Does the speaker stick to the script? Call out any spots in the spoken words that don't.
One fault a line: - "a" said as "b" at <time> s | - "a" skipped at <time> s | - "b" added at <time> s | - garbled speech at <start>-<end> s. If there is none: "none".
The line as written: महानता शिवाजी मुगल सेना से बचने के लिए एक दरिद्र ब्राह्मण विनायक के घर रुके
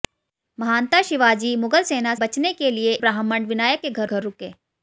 - "से" skipped at 2.1 s
- "एक दरिद्र" skipped at 2.9 s
- "घर" added at 4.0 s